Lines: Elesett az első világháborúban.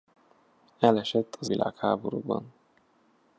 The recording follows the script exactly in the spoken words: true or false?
false